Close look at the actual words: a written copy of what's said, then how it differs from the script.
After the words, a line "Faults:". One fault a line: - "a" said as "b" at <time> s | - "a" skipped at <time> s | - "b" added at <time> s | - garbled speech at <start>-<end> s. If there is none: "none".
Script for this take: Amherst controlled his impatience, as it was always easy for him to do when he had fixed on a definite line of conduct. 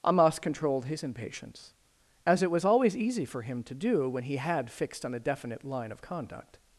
Amos controlled his impatience, as it was always easy for him to do when he had fixed on a definite line of conduct.
Faults:
- "Amherst" said as "Amos" at 0.1 s